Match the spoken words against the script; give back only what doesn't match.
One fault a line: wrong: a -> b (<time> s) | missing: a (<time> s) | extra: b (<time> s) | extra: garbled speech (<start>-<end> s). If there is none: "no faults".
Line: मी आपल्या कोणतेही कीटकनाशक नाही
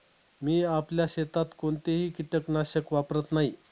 extra: शेतात (1.1 s)
extra: वापरत (2.9 s)